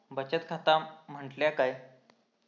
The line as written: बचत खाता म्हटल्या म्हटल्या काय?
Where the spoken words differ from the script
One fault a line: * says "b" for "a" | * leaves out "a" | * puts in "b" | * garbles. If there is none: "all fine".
* leaves out "म्हटल्या"